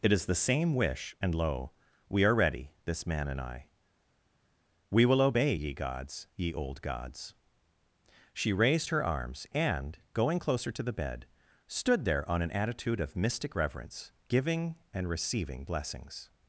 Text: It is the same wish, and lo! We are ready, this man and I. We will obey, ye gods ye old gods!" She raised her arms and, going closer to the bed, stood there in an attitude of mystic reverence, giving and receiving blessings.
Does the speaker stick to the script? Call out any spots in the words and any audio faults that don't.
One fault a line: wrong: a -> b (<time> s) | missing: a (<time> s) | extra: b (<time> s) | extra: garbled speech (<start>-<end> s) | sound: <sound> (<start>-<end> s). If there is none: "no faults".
wrong: in -> on (12.3 s)